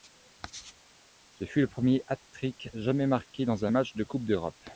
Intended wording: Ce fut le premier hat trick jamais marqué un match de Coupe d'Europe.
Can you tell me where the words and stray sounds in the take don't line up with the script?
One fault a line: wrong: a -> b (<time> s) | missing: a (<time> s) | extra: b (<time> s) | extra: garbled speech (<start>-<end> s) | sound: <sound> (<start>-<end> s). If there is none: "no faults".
extra: dans (3.5 s)